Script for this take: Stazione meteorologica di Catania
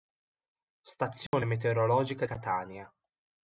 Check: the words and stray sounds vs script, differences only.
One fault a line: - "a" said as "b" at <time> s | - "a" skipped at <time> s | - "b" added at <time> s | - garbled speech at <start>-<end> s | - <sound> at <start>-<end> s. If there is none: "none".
- dropout at 1.3-1.3 s
- "di" skipped at 2.2 s